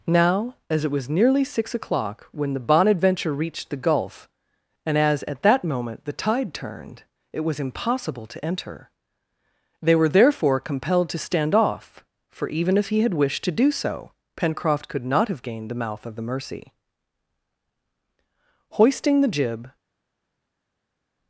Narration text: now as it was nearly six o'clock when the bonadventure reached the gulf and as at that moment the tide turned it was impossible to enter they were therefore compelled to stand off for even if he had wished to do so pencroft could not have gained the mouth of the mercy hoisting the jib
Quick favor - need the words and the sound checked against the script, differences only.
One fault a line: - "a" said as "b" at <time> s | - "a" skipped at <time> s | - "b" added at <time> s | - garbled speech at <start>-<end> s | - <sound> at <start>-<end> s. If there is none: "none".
none